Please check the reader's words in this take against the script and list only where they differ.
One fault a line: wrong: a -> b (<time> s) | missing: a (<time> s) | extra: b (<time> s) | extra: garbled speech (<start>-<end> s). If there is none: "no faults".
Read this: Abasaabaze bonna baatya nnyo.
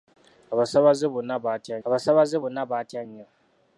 extra: abasaabaze bonna baatya (1.9 s)